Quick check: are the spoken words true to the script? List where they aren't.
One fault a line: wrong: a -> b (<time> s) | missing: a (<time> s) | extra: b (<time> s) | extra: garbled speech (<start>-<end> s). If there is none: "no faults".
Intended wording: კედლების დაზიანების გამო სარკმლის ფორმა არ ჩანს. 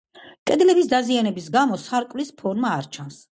no faults